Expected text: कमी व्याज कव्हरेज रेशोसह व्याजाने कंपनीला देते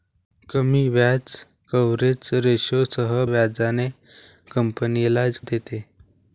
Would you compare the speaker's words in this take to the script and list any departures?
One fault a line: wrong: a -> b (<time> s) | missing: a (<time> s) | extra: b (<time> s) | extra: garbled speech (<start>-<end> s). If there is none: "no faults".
no faults